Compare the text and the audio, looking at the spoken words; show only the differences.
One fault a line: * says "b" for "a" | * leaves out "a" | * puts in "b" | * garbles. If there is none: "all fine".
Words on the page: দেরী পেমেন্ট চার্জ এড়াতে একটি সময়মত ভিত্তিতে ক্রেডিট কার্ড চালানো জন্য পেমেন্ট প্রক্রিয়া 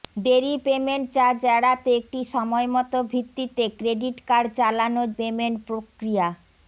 * leaves out "জন্য"